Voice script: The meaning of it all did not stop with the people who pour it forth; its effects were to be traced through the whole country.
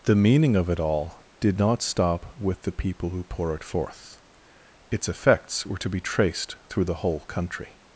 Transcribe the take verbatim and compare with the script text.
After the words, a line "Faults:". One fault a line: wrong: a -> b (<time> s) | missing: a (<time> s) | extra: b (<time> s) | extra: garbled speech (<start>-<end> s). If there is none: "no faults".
The meaning of it all did not stop with the people who pour it forth; its effects were to be traced through the whole country.
Faults:
no faults